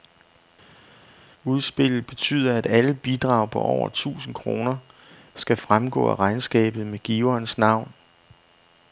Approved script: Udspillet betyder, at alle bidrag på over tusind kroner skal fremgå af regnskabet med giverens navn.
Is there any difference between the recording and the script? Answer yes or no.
no